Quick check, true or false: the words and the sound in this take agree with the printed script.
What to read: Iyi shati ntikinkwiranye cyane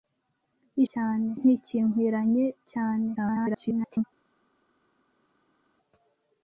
false